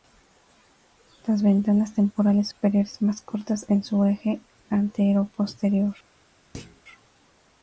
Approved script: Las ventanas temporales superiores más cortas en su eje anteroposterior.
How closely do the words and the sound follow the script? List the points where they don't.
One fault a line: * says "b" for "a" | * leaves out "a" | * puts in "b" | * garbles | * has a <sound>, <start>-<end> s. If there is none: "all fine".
* has a thud, 6.5-6.8 s